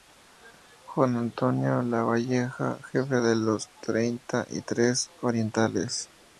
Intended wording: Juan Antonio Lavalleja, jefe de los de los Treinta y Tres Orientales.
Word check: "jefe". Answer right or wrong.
right